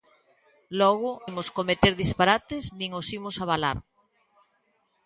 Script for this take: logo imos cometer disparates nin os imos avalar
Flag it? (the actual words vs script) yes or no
no